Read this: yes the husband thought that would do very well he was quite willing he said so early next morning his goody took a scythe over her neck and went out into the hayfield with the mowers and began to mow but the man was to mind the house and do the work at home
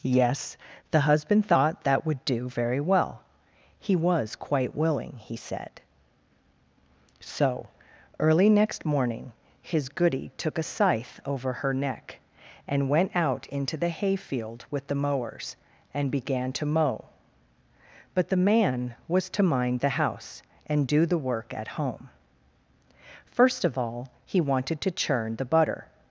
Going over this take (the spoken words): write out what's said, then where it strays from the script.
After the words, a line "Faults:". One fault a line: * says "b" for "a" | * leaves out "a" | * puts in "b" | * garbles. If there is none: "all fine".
yes the husband thought that would do very well he was quite willing he said so early next morning his goody took a scythe over her neck and went out into the hayfield with the mowers and began to mow but the man was to mind the house and do the work at home first of all he wanted to churn the butter
Faults:
* puts in "first of all he wanted to churn the butter"